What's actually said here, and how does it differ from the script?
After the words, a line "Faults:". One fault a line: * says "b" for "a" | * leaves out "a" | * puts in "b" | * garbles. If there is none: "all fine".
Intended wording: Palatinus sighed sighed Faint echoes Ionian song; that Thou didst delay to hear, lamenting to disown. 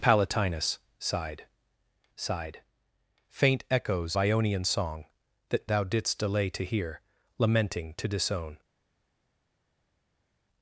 Palatinus sighed sighed Faint echoes Ionian song; that Thou didst delay to hear, lamenting to disown.
Faults:
all fine